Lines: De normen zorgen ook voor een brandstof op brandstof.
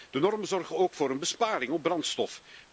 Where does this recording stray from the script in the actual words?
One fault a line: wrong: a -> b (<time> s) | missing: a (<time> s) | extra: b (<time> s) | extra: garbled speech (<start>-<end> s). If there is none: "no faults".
wrong: brandstof -> besparing (1.2 s)